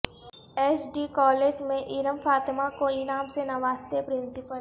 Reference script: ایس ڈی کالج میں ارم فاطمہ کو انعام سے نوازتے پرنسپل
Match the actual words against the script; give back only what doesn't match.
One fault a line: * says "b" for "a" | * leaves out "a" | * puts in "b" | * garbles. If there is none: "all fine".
all fine